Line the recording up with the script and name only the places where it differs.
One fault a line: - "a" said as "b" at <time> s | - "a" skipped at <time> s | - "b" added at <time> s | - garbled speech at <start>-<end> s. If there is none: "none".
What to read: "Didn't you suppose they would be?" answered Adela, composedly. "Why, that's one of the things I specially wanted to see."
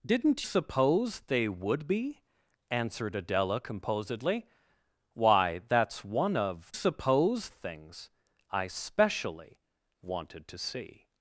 - "you" skipped at 0.5 s
- "the" said as "suppose" at 6.7 s